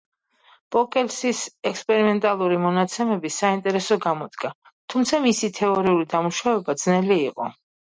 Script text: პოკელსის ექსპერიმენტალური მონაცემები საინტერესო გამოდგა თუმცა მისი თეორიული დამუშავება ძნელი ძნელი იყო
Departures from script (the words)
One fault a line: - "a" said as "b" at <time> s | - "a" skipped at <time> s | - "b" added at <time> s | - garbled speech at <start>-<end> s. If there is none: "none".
- "ძნელი" skipped at 7.2 s